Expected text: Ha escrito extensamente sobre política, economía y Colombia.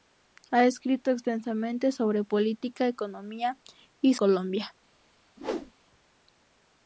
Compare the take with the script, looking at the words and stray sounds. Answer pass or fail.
fail